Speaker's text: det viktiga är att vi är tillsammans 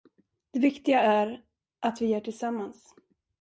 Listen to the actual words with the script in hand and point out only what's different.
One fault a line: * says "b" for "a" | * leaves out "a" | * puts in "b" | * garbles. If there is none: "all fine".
all fine